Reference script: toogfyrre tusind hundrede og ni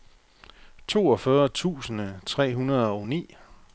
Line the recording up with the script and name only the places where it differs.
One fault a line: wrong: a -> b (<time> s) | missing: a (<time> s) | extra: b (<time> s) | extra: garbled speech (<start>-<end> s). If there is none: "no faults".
extra: tre (2.2 s)